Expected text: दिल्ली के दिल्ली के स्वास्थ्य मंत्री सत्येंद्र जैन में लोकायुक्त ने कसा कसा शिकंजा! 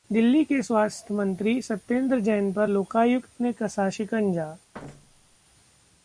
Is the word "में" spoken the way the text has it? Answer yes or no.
no